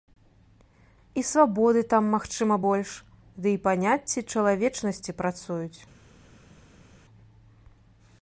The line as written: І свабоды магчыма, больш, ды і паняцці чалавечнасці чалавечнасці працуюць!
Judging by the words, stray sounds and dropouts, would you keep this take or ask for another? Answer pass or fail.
fail